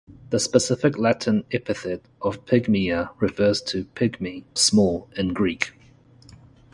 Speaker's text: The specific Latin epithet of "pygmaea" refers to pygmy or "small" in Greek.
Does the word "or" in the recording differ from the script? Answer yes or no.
yes